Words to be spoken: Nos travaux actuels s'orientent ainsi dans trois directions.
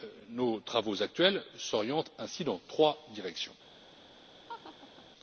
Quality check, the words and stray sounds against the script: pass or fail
fail